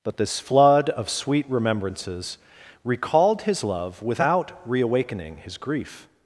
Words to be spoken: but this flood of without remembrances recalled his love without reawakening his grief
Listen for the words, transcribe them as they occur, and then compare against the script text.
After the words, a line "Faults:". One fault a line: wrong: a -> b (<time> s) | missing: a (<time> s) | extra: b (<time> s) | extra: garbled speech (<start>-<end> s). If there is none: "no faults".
but this flood of sweet remembrances recalled his love without reawakening his grief
Faults:
wrong: without -> sweet (1.1 s)